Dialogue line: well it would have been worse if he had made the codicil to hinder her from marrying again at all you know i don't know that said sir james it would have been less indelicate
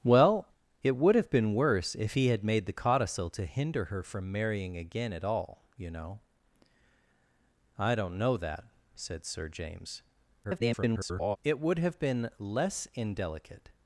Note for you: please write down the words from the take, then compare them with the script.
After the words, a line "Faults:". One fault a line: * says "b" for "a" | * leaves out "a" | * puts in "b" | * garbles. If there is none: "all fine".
well it would have been worse if he had made the codicil to hinder her from marrying again at all you know i don't know that said sir james [garbled] it would have been less indelicate
Faults:
* garbles